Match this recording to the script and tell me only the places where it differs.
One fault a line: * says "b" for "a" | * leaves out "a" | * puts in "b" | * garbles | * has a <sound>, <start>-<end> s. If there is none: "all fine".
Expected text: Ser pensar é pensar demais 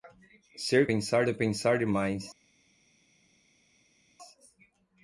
all fine